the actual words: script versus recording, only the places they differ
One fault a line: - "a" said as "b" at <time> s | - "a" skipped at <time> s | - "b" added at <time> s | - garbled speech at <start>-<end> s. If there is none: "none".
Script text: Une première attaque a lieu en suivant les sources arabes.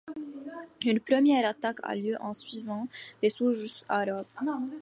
none